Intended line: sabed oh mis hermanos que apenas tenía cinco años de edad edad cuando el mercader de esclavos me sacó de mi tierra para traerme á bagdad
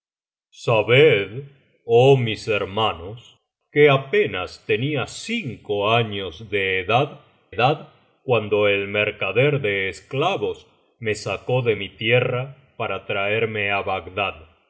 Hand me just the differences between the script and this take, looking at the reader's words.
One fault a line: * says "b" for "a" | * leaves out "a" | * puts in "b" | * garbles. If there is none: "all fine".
all fine